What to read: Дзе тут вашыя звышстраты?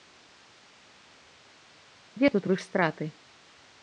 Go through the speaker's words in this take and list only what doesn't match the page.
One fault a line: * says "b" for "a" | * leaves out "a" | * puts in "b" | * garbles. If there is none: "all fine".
* leaves out "вашыя"